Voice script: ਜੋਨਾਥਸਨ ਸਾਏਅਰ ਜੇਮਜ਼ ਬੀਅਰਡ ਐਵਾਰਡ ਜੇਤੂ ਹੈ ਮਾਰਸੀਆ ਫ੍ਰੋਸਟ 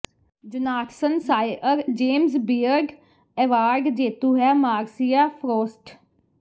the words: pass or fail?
pass